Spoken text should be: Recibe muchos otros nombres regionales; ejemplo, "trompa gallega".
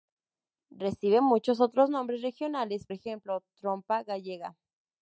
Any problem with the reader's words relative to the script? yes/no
no